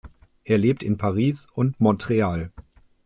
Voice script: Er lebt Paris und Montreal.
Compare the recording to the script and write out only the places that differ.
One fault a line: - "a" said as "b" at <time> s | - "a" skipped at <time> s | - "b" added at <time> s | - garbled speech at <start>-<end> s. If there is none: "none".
- "in" added at 0.8 s